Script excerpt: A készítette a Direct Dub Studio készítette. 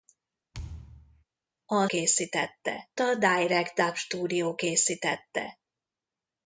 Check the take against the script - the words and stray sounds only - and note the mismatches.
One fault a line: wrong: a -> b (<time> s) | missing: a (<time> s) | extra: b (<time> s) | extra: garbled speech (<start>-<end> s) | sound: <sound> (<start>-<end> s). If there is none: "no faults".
sound: thud (0.5-1.2 s)